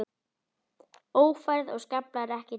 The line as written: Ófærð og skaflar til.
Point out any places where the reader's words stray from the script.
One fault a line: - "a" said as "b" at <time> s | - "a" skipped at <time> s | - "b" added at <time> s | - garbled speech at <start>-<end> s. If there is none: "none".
- "ekki" added at 2.2 s